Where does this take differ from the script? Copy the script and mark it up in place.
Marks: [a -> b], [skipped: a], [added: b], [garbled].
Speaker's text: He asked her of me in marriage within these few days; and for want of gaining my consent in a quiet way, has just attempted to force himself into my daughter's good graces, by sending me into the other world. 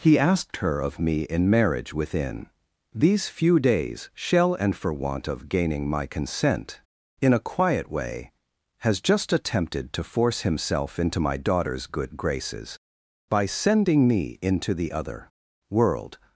He asked her of me in marriage within these few days; [added: shall] and for want of gaining my consent in a quiet way, has just attempted to force himself into my daughter's good graces, by sending me into the other world.